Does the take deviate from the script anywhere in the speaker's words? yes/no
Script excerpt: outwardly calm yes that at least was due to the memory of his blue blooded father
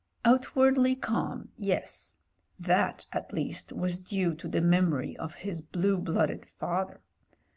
no